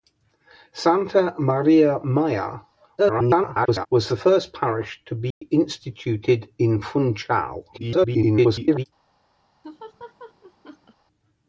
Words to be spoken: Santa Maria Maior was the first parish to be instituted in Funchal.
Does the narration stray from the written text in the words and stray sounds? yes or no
yes